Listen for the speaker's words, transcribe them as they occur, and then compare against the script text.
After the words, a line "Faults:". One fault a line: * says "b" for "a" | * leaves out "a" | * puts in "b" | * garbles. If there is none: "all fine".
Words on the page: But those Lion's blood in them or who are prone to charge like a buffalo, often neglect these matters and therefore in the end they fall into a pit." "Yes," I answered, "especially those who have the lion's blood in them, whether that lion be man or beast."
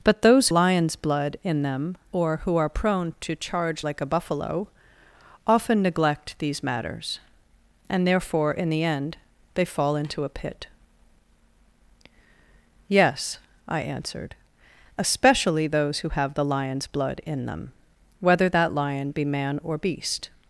But those Lion's blood in them or who are prone to charge like a buffalo, often neglect these matters and therefore in the end they fall into a pit." "Yes," I answered, "especially those who have the lion's blood in them, whether that lion be man or beast."
Faults:
all fine